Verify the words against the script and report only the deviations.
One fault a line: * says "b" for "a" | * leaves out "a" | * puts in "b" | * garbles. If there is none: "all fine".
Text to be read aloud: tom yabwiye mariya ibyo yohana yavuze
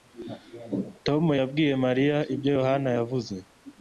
all fine